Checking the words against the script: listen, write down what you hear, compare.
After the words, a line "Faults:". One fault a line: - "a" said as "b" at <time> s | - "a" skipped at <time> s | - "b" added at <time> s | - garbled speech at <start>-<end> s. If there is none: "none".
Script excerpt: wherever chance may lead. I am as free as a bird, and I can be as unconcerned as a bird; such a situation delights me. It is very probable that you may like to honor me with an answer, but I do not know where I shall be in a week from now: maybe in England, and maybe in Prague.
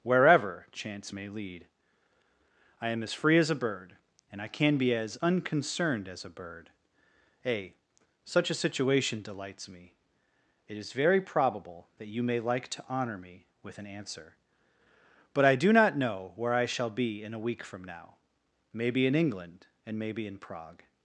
wherever chance may lead. I am as free as a bird, and I can be as unconcerned as a bird; a such a situation delights me. It is very probable that you may like to honor me with an answer, but I do not know where I shall be in a week from now: maybe in England, and maybe in Prague.
Faults:
- "a" added at 7.5 s